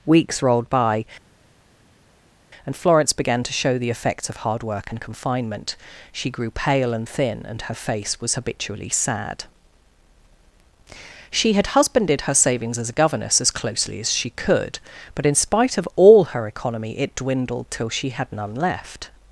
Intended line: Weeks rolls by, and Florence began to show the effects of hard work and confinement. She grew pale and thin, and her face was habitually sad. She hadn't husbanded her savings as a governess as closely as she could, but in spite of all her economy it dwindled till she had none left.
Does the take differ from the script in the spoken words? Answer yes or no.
yes